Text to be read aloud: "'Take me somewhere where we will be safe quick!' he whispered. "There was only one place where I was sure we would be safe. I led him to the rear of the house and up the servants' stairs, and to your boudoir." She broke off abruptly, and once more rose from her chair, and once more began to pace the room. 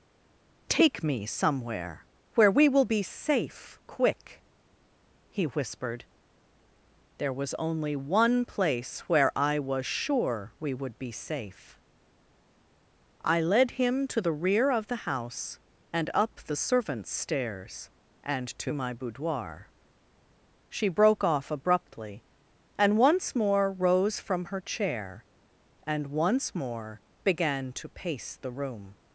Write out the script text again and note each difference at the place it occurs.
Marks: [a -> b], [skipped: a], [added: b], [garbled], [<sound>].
"'Take me somewhere where we will be safe quick!' he whispered. "There was only one place where I was sure we would be safe. I led him to the rear of the house and up the servants' stairs, and to [your -> my] boudoir." She broke off abruptly, and once more rose from her chair, and once more began to pace the room.